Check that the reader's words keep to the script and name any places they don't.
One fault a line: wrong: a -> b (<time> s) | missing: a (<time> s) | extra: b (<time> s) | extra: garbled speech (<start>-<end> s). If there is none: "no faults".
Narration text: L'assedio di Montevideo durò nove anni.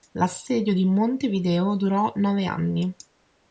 no faults